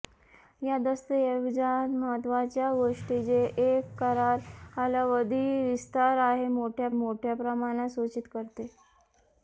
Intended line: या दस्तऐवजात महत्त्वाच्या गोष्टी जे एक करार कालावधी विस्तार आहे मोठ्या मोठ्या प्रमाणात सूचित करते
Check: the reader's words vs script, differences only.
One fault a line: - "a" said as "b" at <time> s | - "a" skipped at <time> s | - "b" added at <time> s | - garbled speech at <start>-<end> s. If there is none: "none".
none